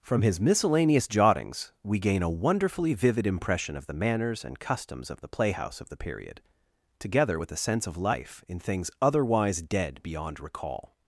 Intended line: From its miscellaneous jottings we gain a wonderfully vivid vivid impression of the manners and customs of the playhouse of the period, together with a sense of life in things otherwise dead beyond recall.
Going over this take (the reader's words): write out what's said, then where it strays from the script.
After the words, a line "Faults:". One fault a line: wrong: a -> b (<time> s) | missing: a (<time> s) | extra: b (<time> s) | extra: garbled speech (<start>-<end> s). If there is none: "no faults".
From his miscellaneous jottings we gain a wonderfully vivid impression of the manners and customs of the playhouse of the period, together with a sense of life in things otherwise dead beyond recall.
Faults:
wrong: its -> his (0.2 s)
missing: vivid (3.2 s)